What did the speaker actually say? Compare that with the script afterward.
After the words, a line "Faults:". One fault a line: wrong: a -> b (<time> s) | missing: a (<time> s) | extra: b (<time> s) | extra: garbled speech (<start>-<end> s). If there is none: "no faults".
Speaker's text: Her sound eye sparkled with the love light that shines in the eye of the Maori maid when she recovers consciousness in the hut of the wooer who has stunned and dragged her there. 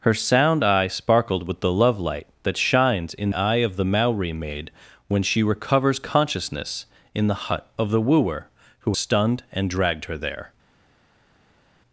Her sound eye sparkled with the love light that shines in eye of the Maori maid when she recovers consciousness in the hut of the wooer who stunned and dragged her there.
Faults:
missing: the (3.3 s)
missing: has (9.0 s)